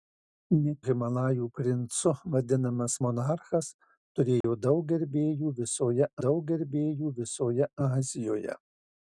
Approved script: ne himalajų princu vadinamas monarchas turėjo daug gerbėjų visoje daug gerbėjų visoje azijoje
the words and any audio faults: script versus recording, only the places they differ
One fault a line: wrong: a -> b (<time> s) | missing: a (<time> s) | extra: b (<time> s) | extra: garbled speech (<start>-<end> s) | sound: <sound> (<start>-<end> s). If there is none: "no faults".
sound: dropout (4.4-4.4 s)